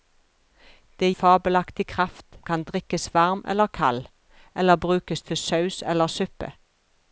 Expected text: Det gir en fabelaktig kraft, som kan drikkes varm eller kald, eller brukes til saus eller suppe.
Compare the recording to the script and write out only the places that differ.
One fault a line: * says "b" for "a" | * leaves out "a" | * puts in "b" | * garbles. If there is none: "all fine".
* leaves out "gir en"
* leaves out "som"